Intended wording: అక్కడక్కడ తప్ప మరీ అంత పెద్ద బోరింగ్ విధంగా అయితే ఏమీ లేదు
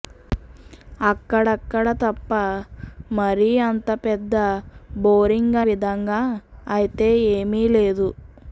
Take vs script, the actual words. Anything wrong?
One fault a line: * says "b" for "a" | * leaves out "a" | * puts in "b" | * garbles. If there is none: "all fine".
all fine